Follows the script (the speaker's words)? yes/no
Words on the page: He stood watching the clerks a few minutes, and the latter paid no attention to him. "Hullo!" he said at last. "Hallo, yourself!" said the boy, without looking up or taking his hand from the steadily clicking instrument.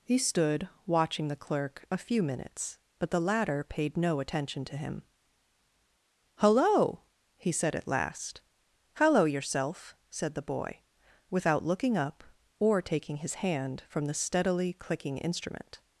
no